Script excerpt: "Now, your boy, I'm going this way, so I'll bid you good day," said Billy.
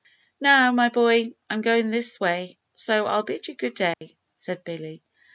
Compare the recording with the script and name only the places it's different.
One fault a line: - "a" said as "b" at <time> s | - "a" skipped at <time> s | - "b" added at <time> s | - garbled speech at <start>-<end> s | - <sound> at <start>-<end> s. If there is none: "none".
- "your" said as "my" at 0.7 s
- dropout at 3.9-4.0 s